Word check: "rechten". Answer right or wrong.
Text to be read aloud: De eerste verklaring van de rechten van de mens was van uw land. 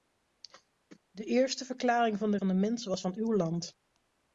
wrong